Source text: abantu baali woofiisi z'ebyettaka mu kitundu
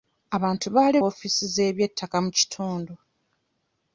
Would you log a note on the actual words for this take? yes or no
no